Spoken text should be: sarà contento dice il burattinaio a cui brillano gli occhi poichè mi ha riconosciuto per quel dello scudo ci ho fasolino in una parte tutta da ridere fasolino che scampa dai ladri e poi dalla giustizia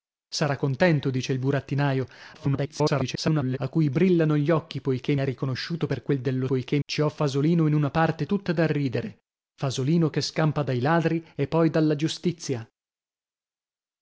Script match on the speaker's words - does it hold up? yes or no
no